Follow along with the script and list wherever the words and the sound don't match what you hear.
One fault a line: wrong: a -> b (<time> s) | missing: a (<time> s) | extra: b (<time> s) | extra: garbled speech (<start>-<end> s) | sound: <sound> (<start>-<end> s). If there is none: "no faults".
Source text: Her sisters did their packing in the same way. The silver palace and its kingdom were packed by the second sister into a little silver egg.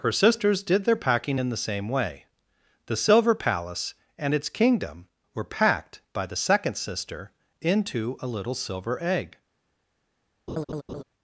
sound: laugh (10.5-11.0 s)